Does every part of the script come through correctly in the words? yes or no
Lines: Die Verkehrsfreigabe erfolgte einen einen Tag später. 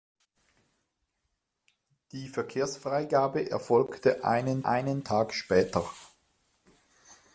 yes